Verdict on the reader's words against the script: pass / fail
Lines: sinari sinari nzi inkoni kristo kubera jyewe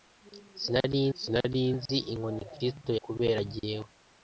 pass